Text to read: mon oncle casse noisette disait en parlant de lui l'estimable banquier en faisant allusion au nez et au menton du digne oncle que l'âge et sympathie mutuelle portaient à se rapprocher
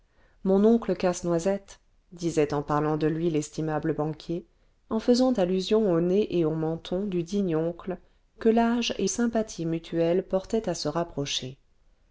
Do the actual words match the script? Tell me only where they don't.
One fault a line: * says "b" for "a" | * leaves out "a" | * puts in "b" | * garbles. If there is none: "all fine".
all fine